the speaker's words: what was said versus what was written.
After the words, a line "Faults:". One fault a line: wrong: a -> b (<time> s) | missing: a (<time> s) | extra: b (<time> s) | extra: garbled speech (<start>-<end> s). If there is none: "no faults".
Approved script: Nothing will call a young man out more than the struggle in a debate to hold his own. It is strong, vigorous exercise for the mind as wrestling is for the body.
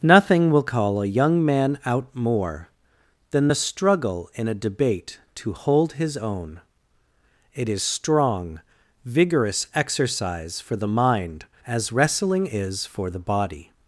Nothing will call a young man out more than the struggle in a debate to hold his own. It is strong, vigorous exercise for the mind as wrestling is for the body.
Faults:
no faults